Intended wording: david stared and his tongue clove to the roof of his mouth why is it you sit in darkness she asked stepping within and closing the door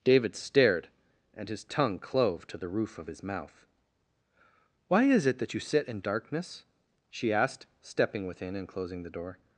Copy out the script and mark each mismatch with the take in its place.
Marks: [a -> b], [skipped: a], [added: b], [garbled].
david stared and his tongue clove to the roof of his mouth why is it [added: that] you sit in darkness she asked stepping within and closing the door